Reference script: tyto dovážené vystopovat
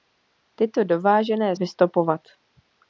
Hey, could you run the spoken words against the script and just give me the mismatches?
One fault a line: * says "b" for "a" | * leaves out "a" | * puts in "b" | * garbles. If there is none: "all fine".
all fine